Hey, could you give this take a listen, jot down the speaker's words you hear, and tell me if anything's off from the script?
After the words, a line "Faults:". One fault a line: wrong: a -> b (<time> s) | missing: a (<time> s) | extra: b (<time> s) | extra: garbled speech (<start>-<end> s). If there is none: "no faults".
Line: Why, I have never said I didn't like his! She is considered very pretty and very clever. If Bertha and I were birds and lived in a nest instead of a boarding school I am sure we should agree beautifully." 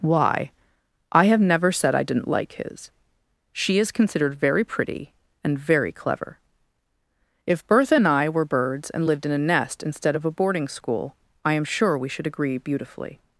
Why, I have never said I didn't like his! She is considered very pretty and very clever. If Bertha and I were birds and lived in a nest instead of a boarding school I am sure we should agree beautifully."
Faults:
no faults